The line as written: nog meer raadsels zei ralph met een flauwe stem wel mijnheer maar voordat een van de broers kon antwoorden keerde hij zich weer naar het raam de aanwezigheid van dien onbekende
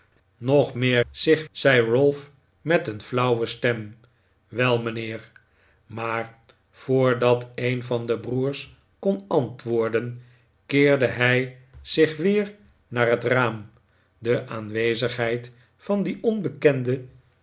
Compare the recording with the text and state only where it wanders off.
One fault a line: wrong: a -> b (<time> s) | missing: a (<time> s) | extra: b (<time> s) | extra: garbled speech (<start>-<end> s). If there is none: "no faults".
wrong: raadsels -> zich (1.1 s)